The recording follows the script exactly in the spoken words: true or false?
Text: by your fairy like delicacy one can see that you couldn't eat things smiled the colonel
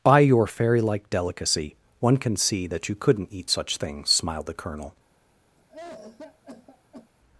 false